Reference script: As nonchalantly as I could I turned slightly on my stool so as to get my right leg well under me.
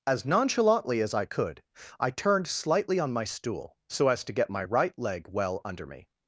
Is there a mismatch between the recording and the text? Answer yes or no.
no